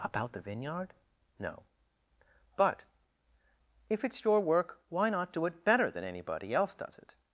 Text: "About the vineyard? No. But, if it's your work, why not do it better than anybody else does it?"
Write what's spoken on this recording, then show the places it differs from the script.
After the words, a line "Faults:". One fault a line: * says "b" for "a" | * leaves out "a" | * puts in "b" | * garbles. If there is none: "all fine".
"About the vineyard? No. But, if it's your work, why not do it better than anybody else does it?"
Faults:
all fine